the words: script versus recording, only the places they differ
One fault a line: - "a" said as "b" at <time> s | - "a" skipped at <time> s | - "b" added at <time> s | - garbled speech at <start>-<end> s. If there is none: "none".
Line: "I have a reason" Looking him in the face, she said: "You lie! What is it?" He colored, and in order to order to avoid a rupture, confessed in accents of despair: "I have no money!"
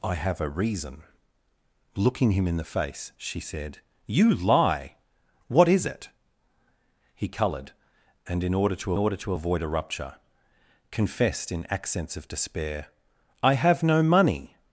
none